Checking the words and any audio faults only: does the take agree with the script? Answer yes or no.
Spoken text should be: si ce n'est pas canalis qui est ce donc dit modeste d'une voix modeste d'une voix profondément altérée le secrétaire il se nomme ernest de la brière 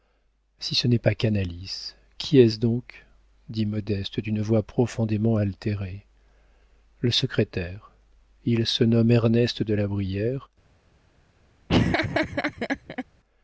no